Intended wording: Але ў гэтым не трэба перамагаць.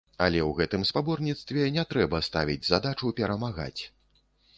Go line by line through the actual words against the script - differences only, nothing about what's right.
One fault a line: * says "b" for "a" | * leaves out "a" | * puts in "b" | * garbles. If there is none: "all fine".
* puts in "спаборніцтве"
* puts in "ставіць задачу"